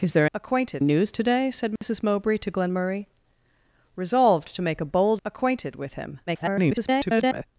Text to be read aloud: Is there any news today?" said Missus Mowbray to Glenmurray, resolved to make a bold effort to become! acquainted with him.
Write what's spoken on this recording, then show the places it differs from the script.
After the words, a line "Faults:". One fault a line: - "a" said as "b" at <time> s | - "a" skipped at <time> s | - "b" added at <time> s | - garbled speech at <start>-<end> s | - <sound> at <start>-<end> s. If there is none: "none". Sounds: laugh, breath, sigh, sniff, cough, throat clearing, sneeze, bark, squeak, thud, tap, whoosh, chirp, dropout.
Is there acquainted news today?" said Missus Mowbray to Glenmurray, resolved to make a bold! acquainted with him. [garbled]
Faults:
- "any" said as "acquainted" at 0.3 s
- dropout at 1.8-1.8 s
- "effort to become" skipped at 5.2 s
- garbled speech at 6.3-7.5 s